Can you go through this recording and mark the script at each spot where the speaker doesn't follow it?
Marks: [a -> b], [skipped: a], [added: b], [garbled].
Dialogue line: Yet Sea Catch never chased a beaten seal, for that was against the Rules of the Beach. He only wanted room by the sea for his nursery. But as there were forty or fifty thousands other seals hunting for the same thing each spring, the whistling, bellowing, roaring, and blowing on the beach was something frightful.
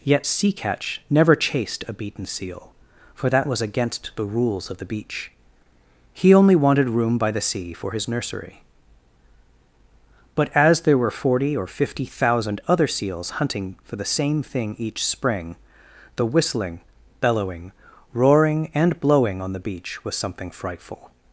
Yet Sea Catch never chased a beaten seal, for that was against the Rules of the Beach. He only wanted room by the sea for his nursery. But as there were forty or fifty [thousands -> thousand] other seals hunting for the same thing each spring, the whistling, bellowing, roaring, and blowing on the beach was something frightful.